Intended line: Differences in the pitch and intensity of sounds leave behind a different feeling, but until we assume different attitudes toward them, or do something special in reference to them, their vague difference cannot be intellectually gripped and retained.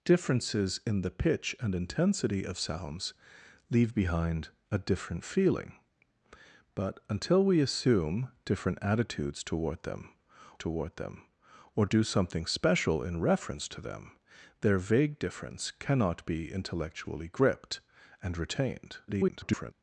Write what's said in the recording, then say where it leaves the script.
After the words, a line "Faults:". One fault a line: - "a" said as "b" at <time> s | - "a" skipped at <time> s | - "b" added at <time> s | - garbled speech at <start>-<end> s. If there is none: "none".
Differences in the pitch and intensity of sounds leave behind a different feeling, but until we assume different attitudes toward them toward them, or do something special in reference to them, their vague difference cannot be intellectually gripped and retained. [garbled]
Faults:
- "toward them" added at 10.6 s
- garbled speech at 19.1-19.7 s